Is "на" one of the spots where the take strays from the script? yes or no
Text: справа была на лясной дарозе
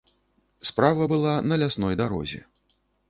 no